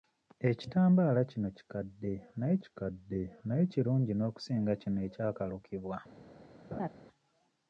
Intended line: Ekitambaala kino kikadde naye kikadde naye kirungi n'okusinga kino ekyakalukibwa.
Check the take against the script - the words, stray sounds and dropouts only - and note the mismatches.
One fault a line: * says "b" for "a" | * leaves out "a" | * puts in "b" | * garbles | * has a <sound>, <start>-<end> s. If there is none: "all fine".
* has a laugh, 6.7-6.9 s